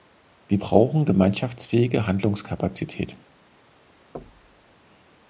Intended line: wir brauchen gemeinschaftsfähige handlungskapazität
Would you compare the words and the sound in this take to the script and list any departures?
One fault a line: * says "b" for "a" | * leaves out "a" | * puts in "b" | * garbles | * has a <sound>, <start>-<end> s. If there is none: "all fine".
* has a thud, 4.1-4.7 s